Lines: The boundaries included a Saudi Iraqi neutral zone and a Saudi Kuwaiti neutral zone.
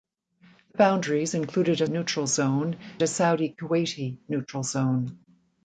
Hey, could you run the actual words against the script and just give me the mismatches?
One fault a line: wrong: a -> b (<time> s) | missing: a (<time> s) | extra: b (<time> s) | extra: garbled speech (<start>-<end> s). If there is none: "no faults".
missing: Saudi Iraqi (1.9 s)
missing: and (2.8 s)